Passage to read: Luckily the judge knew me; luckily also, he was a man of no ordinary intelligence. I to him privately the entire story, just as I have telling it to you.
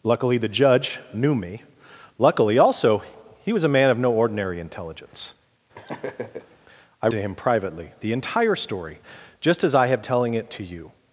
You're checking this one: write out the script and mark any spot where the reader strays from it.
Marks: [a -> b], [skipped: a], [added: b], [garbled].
Luckily the judge knew me; luckily also, he was a man of no ordinary intelligence. I to him privately the entire story, just as I have telling it to you.